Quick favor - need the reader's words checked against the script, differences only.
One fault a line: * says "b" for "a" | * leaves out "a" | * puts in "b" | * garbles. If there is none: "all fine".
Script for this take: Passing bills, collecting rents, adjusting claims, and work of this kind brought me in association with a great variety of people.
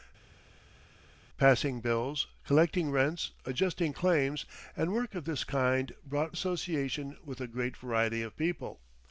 * leaves out "me in"